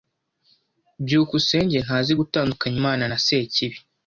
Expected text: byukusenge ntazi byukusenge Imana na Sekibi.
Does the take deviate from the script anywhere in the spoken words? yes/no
yes